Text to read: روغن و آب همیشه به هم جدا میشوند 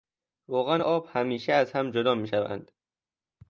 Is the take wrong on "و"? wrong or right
right